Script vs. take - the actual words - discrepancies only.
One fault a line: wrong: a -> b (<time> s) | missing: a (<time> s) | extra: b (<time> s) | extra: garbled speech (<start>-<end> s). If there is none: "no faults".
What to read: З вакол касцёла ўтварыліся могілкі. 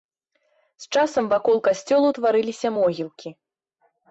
extra: часам (0.9 s)